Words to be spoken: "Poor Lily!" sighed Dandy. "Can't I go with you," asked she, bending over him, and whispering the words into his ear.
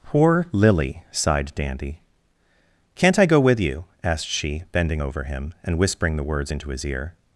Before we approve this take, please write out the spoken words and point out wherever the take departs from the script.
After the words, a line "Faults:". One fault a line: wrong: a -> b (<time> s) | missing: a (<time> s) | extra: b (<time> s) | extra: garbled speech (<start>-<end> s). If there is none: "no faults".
"Poor Lily!" sighed Dandy. "Can't I go with you," asked she, bending over him, and whispering the words into his ear.
Faults:
no faults